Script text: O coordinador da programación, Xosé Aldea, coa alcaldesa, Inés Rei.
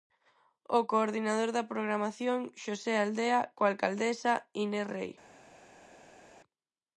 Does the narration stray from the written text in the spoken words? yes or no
no